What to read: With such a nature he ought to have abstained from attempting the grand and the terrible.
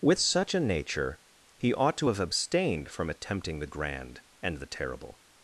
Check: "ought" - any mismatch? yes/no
no